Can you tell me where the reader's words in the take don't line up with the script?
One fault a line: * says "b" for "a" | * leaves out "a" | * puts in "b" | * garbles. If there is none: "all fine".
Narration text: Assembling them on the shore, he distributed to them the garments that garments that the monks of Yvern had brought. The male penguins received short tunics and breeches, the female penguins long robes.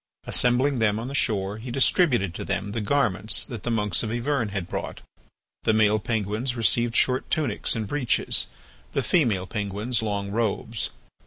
* leaves out "garments that"